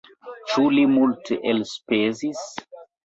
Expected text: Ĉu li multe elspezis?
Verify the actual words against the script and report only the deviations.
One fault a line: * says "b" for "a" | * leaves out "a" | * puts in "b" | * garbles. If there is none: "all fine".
all fine